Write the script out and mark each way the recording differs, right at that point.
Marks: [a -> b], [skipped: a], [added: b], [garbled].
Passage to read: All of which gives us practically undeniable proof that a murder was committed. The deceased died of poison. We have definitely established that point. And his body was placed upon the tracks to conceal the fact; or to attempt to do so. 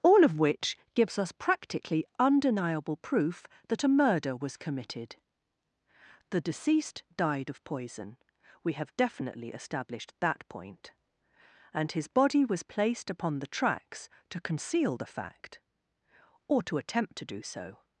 All of which gives us practically undeniable proof that a murder was committed. The deceased died of poison. We have definitely established that point. And his body was placed upon the tracks to conceal the fact; or to attempt to do so.